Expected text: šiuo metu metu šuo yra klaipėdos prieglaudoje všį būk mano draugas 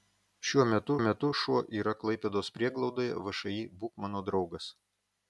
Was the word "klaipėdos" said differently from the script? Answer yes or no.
no